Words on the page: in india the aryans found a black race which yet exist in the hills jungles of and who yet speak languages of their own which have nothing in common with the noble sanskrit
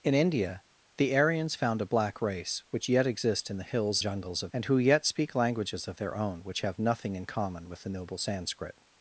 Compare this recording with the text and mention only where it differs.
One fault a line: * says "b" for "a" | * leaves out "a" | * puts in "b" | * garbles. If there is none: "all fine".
all fine